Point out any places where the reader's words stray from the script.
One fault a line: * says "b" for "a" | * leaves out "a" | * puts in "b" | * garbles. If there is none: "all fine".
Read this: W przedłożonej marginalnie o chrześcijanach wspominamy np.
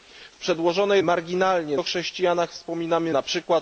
all fine